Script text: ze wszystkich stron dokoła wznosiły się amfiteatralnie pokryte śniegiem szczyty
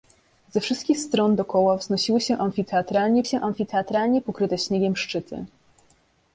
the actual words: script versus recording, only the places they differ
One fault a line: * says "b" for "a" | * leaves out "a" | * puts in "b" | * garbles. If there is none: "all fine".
* puts in "się amfiteatralnie"